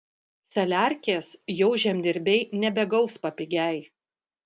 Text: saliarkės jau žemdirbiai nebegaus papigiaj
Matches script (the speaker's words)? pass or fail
pass